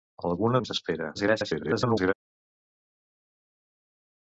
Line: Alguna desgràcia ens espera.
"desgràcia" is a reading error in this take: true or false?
true